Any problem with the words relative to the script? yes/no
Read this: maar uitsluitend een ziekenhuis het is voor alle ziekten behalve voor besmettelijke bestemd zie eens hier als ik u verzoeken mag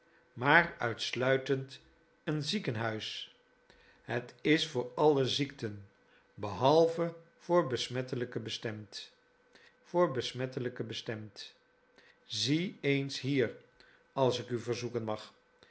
yes